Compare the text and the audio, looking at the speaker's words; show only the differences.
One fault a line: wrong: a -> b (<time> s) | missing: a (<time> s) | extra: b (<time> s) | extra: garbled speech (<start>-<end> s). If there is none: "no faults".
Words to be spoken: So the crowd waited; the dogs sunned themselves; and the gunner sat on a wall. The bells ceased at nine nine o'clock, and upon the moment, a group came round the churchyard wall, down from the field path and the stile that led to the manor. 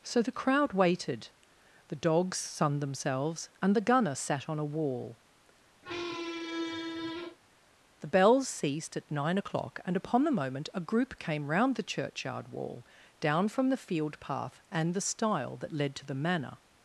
missing: nine (9.4 s)